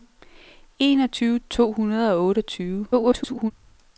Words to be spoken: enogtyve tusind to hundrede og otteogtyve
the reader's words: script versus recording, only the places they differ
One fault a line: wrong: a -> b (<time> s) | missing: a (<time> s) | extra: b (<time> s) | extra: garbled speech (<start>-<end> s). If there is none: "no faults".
missing: tusind (1.4 s)
extra: garbled speech (2.9-3.5 s)